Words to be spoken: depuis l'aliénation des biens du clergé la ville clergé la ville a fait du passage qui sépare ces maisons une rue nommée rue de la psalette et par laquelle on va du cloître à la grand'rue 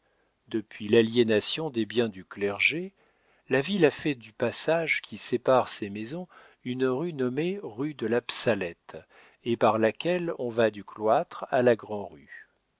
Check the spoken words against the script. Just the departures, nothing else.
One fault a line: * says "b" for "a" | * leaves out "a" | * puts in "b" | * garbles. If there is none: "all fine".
* leaves out "clergé la ville"